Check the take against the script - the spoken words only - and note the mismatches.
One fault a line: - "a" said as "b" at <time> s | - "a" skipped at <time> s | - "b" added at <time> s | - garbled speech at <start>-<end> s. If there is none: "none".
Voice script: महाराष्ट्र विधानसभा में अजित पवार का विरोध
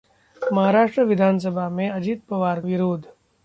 - "का" skipped at 2.6 s